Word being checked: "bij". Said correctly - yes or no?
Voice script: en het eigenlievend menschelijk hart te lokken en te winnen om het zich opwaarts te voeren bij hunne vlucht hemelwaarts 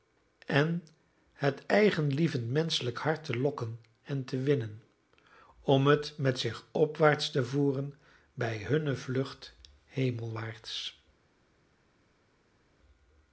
yes